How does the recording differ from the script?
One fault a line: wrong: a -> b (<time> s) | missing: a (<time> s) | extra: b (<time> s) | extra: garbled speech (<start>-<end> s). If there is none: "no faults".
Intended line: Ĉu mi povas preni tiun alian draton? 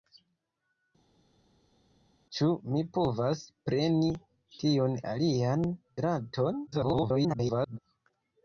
extra: garbled speech (6.7-7.8 s)